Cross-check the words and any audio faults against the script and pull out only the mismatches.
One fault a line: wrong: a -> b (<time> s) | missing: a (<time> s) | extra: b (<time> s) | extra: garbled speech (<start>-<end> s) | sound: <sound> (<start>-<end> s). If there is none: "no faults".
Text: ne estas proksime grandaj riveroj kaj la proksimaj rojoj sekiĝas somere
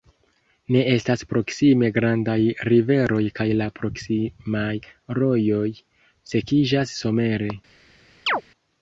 sound: chirp (8.3-8.4 s)